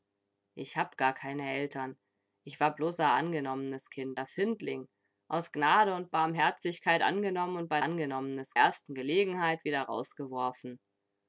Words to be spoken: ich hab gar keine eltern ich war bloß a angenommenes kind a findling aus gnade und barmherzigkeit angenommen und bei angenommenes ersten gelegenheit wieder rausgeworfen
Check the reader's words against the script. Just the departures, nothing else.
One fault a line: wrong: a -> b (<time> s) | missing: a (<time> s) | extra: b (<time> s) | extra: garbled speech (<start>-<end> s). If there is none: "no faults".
no faults